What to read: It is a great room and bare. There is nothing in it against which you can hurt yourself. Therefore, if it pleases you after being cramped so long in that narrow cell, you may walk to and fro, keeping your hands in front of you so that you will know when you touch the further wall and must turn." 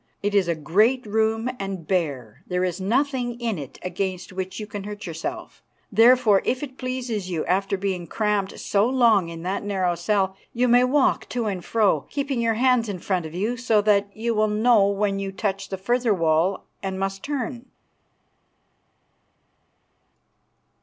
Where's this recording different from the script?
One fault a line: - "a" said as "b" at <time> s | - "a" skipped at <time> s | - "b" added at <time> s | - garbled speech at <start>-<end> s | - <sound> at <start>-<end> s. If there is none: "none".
none